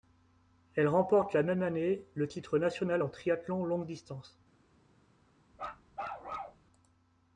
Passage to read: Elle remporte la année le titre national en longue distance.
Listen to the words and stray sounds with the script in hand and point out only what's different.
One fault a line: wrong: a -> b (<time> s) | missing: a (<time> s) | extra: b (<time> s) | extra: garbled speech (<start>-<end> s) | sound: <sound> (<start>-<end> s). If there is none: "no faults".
extra: même (1.4 s)
extra: triathlon (3.1 s)
sound: bark (5.5-6.6 s)